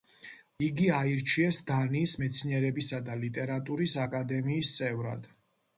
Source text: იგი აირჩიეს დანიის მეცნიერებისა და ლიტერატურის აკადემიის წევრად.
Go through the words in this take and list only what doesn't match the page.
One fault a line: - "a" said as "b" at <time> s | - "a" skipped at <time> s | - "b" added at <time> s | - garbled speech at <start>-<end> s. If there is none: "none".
none